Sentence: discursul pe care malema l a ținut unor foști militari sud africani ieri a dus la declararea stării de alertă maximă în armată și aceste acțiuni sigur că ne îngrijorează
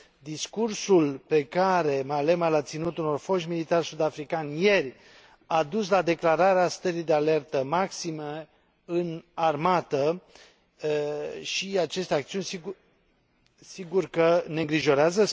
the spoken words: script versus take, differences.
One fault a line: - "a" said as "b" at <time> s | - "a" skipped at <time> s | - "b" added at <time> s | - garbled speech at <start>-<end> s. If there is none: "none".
none